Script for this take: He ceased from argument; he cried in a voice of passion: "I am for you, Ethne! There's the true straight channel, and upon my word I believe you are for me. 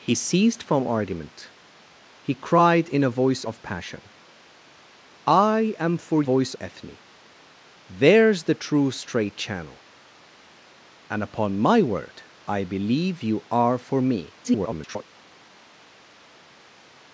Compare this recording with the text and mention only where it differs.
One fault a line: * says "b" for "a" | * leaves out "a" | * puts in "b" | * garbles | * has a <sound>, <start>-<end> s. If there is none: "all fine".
* says "voice" for "you"
* garbles